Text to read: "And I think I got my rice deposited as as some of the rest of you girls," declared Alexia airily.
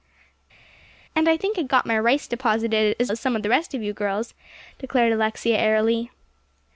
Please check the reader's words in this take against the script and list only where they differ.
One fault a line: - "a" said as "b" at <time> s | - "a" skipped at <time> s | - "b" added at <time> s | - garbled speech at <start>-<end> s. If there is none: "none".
none